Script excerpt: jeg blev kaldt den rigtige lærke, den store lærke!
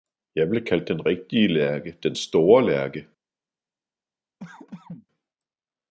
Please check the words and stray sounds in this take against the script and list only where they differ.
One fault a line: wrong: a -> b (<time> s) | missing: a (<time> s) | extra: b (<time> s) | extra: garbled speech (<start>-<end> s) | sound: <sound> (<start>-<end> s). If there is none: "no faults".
sound: cough (4.4-5.1 s)